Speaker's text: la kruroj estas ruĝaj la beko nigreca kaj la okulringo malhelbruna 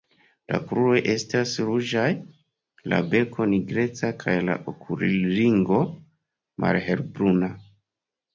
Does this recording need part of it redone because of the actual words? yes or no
no